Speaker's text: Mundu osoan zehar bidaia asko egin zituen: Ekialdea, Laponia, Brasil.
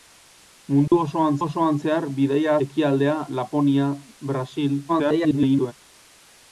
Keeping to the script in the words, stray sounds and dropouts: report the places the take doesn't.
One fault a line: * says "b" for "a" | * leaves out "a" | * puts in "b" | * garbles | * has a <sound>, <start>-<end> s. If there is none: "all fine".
* has a dropout, 0.9-0.9 s
* puts in "osoan"
* leaves out "asko egin zituen"
* garbles